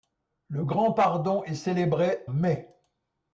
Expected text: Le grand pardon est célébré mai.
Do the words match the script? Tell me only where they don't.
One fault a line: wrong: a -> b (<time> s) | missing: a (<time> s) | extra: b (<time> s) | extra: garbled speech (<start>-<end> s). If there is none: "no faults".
no faults